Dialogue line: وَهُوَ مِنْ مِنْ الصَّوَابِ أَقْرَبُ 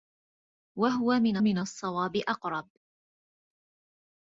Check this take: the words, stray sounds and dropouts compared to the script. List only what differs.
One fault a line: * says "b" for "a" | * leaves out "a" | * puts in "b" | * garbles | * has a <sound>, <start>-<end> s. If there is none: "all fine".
all fine